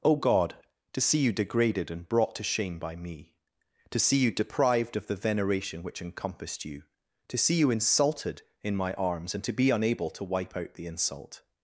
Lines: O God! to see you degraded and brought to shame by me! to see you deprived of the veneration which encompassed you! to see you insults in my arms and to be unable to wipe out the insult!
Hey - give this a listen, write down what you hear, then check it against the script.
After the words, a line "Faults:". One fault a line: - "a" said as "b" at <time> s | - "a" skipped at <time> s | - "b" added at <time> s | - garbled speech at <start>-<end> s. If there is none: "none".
O God! to see you degraded and brought to shame by me! to see you deprived of the veneration which encompassed you! to see you insulted in my arms and to be unable to wipe out the insult!
Faults:
- "insults" said as "insulted" at 7.7 s